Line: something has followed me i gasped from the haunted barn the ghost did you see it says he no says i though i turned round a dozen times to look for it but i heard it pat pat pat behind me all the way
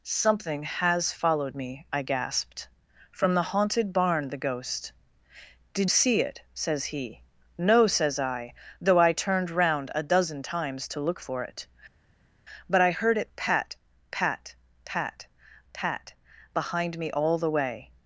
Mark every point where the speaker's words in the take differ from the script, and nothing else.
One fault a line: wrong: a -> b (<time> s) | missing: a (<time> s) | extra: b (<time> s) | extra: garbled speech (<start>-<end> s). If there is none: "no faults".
missing: you (5.9 s)
extra: pat (15.7 s)